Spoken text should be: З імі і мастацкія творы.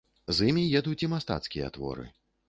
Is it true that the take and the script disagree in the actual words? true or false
true